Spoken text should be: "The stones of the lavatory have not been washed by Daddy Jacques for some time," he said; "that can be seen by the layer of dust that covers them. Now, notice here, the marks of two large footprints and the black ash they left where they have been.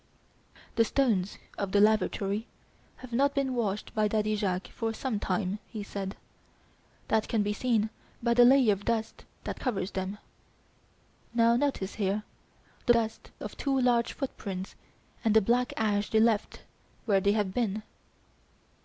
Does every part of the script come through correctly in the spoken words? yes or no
no